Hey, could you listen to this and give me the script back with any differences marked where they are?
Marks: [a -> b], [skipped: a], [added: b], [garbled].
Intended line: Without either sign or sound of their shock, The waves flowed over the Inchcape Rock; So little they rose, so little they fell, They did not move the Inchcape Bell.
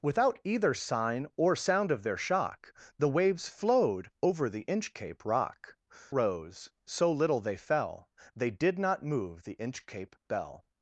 Without either sign or sound of their shock, The waves flowed over the Inchcape Rock; [skipped: So little they] rose, so little they fell, They did not move the Inchcape Bell.